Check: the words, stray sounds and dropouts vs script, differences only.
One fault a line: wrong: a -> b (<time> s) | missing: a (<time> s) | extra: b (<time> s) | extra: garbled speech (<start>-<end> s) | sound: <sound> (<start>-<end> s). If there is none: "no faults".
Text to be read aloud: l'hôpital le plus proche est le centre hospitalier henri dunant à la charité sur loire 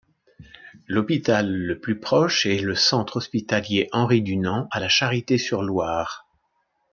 no faults